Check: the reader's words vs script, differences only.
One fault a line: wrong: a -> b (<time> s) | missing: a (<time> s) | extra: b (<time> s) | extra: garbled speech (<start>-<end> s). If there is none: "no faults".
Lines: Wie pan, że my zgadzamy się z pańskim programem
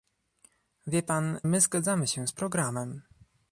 missing: że (1.4 s)
missing: pańskim (2.3 s)